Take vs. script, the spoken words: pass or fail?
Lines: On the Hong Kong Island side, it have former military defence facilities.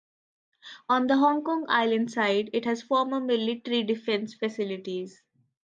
fail